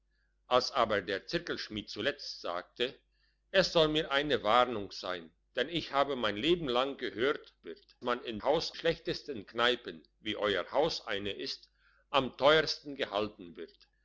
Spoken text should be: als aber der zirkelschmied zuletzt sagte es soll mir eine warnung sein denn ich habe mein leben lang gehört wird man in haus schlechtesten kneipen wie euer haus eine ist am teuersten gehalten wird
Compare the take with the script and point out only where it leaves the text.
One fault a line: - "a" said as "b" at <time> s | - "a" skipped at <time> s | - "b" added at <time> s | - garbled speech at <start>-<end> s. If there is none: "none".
none